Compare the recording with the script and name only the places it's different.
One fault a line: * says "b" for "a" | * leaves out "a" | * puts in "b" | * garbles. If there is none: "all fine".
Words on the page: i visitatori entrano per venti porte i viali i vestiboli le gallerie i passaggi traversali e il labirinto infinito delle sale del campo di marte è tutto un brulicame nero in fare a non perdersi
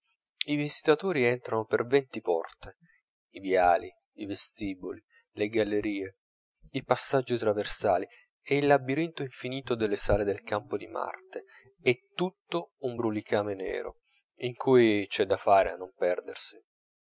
* puts in "cui c'è da"